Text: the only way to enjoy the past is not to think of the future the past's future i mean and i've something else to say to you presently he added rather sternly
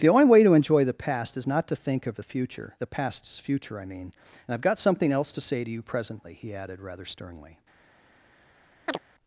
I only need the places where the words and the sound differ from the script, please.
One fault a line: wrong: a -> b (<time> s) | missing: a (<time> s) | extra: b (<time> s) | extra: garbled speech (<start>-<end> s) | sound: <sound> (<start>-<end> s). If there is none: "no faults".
extra: got (4.6 s)
sound: chirp (8.9-9.0 s)